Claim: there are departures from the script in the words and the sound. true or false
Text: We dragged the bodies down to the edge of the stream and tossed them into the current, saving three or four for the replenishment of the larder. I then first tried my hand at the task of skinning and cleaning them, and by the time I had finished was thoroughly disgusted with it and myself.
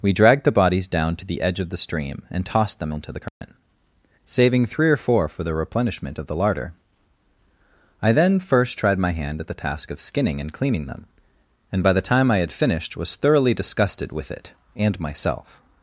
true